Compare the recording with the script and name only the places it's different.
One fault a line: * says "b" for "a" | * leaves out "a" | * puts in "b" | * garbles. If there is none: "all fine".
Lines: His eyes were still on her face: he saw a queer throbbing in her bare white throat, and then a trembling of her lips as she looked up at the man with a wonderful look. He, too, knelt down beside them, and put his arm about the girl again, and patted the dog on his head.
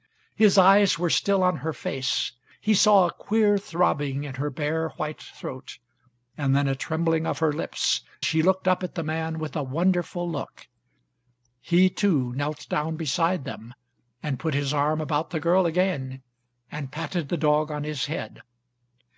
* leaves out "as"